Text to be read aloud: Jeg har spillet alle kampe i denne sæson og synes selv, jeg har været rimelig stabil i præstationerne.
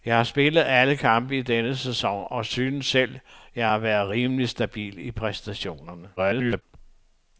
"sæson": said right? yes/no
yes